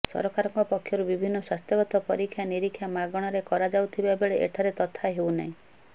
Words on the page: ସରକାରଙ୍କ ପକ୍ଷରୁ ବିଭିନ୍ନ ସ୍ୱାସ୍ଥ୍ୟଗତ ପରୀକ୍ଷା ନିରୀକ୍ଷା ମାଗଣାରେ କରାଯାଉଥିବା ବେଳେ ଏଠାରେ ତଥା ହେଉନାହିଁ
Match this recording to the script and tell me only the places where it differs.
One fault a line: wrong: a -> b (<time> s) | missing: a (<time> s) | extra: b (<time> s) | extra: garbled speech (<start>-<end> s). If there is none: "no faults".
no faults